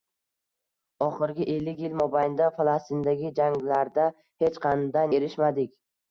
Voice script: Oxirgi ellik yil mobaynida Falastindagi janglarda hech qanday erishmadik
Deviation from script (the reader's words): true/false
false